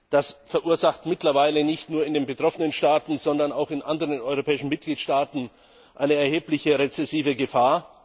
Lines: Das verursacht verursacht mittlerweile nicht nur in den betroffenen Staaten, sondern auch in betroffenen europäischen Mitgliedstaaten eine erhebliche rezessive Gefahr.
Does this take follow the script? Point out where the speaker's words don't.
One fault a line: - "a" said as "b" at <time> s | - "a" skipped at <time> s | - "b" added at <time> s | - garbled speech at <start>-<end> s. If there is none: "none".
- "verursacht" skipped at 1.1 s
- "betroffenen" said as "anderen" at 3.8 s